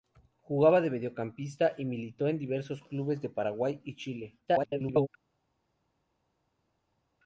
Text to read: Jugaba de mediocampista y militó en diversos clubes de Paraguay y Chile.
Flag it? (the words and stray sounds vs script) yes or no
yes